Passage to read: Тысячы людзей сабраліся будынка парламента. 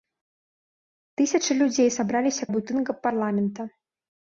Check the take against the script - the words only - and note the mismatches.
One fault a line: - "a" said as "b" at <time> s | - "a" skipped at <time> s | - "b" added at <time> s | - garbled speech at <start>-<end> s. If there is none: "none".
none